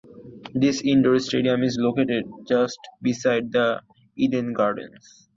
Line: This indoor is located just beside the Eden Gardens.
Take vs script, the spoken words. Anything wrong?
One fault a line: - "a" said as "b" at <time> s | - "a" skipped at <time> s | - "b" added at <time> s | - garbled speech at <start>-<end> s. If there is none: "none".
- "stadium" added at 1.2 s